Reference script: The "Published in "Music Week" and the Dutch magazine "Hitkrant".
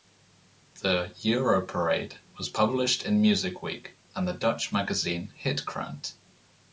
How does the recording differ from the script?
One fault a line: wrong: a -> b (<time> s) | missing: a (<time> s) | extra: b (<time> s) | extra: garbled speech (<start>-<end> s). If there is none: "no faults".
extra: Europarade was (1.2 s)